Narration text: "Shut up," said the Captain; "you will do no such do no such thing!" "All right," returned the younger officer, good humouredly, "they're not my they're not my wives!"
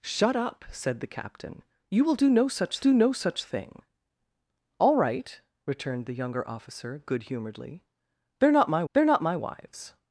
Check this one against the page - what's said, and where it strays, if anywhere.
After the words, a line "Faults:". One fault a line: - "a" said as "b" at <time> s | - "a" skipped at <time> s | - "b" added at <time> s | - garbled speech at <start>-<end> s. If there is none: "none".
"Shut up," said the Captain; "you will do no such do no such thing!" "All right," returned the younger officer, good humouredly, "they're not my they're not my wives!"
Faults:
none